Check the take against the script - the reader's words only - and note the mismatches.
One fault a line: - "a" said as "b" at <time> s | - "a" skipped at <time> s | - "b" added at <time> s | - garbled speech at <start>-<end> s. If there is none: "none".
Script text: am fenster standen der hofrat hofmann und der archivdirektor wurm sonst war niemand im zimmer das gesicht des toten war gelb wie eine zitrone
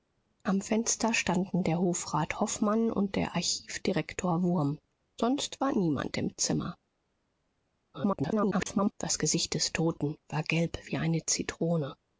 - garbled speech at 7.9-8.9 s